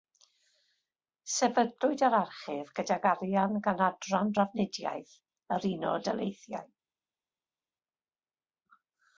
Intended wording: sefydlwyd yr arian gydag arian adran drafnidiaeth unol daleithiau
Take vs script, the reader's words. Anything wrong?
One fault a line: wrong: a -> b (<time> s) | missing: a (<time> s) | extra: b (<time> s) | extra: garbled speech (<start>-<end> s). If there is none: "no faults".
wrong: arian -> archif (2.2 s)
extra: gan (3.7 s)
extra: yr (5.6 s)